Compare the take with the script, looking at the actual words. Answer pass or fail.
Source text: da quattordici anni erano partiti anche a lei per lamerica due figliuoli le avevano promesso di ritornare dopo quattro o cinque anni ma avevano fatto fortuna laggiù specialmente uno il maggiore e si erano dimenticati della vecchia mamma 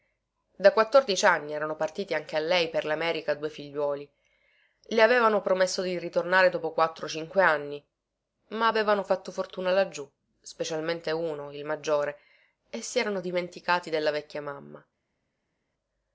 pass